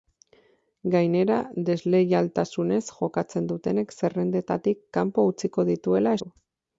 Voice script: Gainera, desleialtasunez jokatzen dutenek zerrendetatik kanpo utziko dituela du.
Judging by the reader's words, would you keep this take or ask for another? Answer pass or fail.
pass